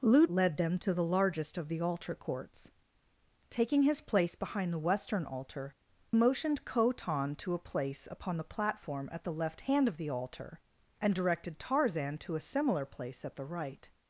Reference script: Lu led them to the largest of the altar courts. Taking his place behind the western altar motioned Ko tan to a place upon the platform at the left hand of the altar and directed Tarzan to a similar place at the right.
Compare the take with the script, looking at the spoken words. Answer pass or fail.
pass